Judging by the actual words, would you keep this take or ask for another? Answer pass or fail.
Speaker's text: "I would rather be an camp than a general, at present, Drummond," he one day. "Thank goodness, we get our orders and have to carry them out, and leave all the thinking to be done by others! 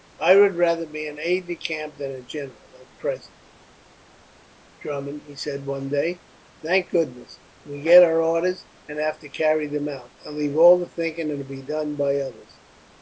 fail